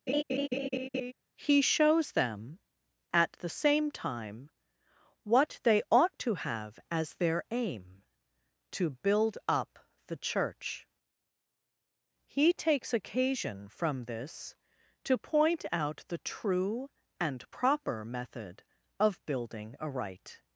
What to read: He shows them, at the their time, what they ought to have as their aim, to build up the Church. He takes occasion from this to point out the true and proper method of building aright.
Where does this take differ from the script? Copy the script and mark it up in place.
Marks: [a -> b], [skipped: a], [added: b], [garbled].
He shows them, at the [their -> same] time, what they ought to have as their aim, to build up the Church. He takes occasion from this to point out the true and proper method of building aright.